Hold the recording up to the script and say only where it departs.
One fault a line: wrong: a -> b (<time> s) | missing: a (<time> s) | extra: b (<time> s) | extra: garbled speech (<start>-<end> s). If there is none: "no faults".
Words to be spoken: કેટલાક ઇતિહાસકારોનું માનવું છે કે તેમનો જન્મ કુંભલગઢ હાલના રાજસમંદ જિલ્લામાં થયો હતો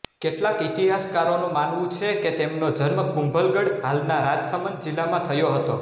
no faults